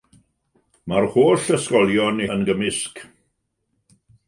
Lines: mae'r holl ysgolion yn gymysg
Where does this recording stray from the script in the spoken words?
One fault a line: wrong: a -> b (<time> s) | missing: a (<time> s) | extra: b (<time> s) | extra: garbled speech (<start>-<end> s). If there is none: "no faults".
no faults